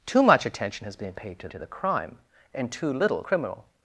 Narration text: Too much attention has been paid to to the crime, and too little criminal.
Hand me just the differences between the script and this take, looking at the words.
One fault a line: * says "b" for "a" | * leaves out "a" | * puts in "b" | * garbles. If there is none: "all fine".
all fine